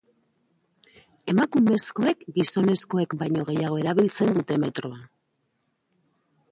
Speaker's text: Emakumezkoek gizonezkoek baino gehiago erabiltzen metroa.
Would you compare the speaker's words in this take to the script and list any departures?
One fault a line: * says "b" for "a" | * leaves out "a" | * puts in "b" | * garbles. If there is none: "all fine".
* puts in "dute"